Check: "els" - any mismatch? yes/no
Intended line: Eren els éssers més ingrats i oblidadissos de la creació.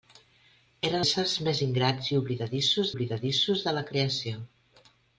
yes